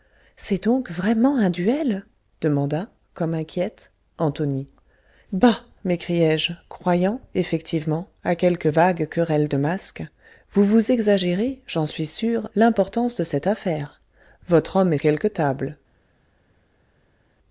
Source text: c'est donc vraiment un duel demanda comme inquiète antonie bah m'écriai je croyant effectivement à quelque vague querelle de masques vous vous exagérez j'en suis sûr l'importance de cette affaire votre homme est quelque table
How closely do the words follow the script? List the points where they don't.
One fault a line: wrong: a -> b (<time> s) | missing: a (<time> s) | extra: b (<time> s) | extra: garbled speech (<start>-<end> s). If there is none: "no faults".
no faults